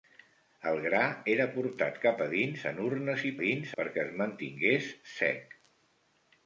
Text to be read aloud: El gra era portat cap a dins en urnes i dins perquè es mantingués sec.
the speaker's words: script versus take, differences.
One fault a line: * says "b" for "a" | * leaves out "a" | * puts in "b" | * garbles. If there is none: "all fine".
all fine